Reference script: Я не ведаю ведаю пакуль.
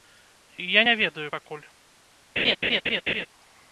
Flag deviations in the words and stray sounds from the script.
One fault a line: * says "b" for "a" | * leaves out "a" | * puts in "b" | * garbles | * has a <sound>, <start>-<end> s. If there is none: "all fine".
* leaves out "ведаю"
* has a laugh, 2.4-3.3 s